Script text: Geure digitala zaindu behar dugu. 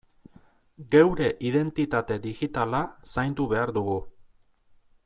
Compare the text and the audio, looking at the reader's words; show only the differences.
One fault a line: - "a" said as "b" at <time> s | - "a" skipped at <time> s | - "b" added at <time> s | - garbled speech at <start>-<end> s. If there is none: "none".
- "identitate" added at 1.5 s